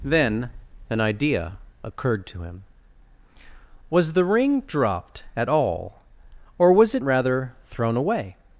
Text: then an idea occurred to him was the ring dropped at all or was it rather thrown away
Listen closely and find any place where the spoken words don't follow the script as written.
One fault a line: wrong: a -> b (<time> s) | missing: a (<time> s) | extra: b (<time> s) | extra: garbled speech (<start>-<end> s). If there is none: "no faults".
no faults